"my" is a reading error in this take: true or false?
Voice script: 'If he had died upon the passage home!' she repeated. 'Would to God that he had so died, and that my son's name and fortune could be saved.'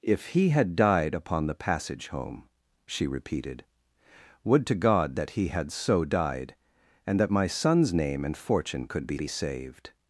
false